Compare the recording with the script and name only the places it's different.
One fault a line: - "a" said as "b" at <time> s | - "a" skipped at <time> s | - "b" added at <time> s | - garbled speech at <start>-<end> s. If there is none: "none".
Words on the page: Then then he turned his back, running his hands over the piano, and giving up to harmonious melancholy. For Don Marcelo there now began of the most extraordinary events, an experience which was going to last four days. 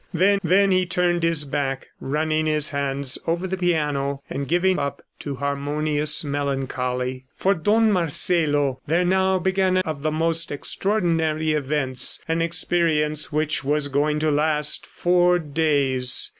none